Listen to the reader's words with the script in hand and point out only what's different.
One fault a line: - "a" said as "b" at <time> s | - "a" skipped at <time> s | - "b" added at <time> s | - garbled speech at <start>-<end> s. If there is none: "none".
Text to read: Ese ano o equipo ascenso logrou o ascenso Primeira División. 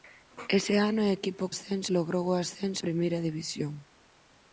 none